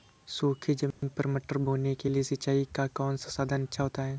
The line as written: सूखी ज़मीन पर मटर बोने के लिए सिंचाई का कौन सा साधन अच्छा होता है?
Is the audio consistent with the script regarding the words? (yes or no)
yes